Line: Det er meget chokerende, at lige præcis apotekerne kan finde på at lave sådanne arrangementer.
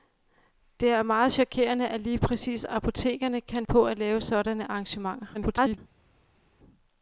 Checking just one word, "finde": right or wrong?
wrong